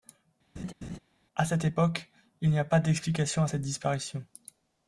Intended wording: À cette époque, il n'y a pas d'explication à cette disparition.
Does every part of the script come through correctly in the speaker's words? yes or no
yes